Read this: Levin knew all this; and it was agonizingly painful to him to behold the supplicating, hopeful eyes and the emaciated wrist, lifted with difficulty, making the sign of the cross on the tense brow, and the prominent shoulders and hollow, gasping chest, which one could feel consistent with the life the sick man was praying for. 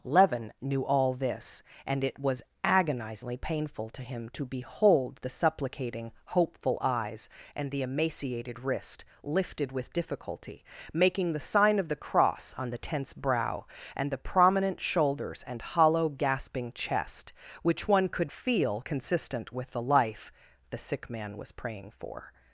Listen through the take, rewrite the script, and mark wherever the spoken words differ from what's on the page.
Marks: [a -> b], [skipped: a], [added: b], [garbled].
Levin knew all this; and it was agonizingly painful to him to behold the supplicating, hopeful eyes and the emaciated wrist, lifted with difficulty, making the sign of the cross on the tense brow, and the prominent shoulders and hollow, gasping chest, which one could feel consistent with the life the sick man was praying for.